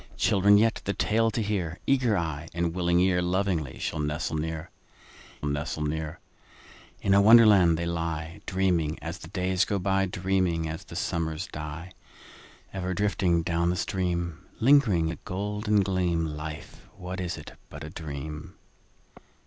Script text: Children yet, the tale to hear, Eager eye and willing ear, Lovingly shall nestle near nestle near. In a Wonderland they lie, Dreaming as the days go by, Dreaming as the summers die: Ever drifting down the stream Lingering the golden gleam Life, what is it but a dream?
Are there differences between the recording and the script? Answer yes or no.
no